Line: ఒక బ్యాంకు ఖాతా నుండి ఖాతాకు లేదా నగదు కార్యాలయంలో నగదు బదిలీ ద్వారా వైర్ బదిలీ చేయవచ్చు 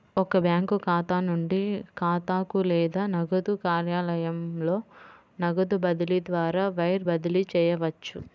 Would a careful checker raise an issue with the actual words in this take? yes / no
no